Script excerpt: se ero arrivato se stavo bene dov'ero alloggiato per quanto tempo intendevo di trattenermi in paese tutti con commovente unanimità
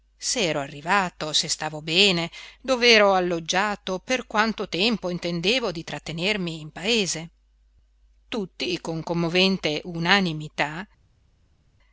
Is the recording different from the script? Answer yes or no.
no